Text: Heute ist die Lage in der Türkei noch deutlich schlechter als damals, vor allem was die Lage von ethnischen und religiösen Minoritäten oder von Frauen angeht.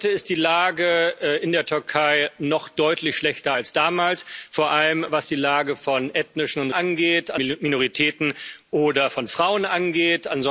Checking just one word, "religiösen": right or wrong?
wrong